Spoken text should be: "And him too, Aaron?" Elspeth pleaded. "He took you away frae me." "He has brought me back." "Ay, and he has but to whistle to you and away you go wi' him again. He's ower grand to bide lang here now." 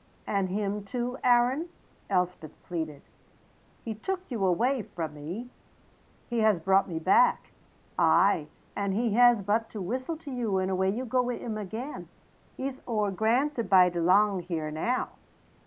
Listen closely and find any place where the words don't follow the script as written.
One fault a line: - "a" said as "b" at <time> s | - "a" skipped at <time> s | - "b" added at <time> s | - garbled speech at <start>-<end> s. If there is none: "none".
none